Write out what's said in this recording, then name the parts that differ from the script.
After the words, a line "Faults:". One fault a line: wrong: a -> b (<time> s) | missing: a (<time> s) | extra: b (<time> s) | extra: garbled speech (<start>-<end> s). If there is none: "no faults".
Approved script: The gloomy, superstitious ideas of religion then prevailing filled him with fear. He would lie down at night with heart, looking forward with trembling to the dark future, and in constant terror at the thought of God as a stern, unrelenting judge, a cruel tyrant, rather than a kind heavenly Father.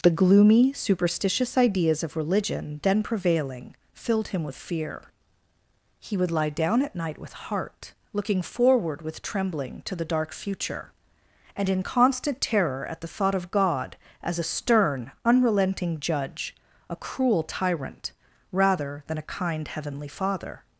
The gloomy, superstitious ideas of religion then prevailing filled him with fear. He would lie down at night with heart, looking forward with trembling to the dark future, and in constant terror at the thought of God as a stern, unrelenting judge, a cruel tyrant, rather than a kind heavenly Father.
Faults:
no faults